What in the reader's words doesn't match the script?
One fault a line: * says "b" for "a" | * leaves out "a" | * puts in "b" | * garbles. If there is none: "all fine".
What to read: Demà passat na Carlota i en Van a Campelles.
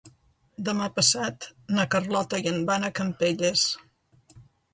all fine